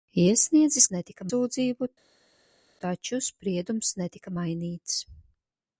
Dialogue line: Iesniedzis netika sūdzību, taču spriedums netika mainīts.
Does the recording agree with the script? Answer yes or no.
yes